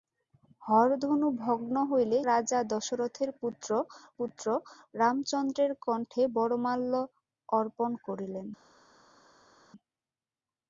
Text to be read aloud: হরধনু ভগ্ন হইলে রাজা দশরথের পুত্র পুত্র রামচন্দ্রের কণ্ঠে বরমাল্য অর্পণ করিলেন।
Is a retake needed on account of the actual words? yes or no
no